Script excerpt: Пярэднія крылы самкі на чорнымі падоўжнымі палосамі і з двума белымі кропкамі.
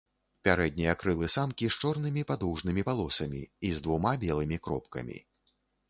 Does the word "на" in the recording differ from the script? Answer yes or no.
yes